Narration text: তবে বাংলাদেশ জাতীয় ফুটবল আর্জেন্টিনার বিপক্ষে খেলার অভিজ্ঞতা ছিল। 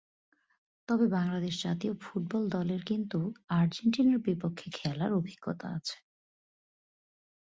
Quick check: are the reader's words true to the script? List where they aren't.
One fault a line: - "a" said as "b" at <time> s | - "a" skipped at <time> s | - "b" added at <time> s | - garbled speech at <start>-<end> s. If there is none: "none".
- "দলের কিন্তু" added at 2.5 s
- "ছিল" said as "আছে" at 5.8 s